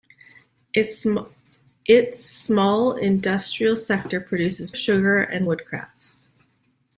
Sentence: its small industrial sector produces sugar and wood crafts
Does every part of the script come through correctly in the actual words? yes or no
yes